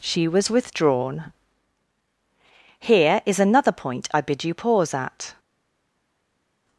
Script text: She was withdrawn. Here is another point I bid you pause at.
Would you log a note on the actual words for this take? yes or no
no